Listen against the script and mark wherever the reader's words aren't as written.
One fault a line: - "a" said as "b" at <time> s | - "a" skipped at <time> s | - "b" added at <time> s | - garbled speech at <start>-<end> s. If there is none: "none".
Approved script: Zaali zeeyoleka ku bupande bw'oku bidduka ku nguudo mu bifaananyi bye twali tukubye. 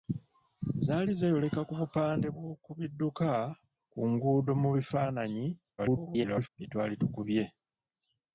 - garbled speech at 5.8-6.5 s